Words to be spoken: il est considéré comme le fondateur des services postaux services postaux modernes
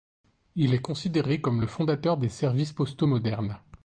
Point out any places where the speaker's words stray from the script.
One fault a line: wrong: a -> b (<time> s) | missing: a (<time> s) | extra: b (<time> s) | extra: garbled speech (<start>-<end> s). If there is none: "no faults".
missing: services postaux (3.1 s)